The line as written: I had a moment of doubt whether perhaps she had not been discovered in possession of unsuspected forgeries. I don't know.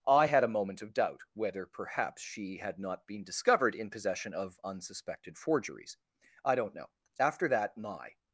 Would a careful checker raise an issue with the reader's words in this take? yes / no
yes